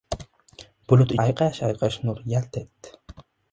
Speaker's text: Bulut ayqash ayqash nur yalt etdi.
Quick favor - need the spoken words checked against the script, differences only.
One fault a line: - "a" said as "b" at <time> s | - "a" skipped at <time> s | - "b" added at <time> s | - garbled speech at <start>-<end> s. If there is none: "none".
none